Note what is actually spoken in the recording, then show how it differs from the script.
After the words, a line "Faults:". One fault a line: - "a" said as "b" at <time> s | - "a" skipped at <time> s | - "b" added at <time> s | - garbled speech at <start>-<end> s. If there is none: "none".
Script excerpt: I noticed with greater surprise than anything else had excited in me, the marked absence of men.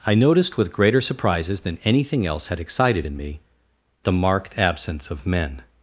I noticed with greater surprises than anything else had excited in me, the marked absence of men.
Faults:
- "surprise" said as "surprises" at 1.0 s